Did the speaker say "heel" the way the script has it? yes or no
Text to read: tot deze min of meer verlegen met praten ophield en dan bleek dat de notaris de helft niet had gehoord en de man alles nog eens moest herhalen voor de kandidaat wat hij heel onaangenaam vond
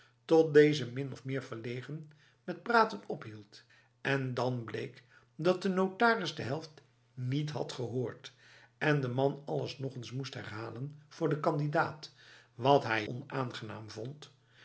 no